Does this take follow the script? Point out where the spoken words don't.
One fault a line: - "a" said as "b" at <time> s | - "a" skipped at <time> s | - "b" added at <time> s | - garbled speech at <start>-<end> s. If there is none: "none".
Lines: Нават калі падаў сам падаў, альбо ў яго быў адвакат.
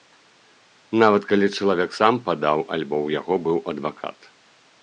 - "падаў" said as "чалавек" at 1.6 s